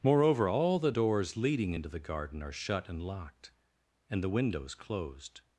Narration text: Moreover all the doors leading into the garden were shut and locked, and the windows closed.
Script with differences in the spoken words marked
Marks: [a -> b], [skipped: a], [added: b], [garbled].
Moreover all the doors leading into the garden [were -> are] shut and locked, and the windows closed.